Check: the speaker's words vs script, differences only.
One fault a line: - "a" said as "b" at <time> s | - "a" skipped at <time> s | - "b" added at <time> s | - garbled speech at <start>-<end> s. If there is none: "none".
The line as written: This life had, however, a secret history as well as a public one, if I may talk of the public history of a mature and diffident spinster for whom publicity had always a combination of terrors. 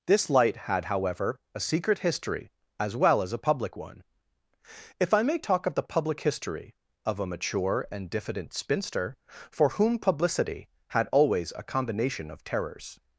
- "life" said as "light" at 0.3 s